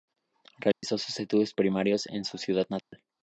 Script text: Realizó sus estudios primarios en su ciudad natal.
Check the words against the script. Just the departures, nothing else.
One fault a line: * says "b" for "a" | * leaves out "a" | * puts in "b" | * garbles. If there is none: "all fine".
all fine